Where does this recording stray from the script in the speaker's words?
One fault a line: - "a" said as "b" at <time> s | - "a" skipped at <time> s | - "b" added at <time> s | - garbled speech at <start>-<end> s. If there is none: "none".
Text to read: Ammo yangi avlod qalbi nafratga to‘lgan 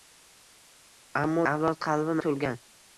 - "yangi" skipped at 1.4 s
- "nafratga" skipped at 2.2 s